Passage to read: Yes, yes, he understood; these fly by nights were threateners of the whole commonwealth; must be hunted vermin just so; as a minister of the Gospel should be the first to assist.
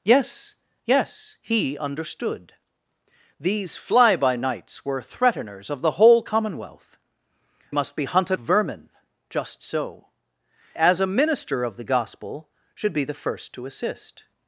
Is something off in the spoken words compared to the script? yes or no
no